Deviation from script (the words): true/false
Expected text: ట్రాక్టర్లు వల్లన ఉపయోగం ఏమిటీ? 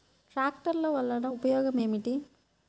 false